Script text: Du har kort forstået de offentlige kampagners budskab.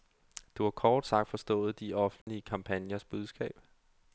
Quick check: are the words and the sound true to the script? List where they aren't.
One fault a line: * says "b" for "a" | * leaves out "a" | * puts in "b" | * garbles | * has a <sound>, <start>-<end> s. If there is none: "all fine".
* puts in "sagt"
* has a dropout, 2.2-2.3 s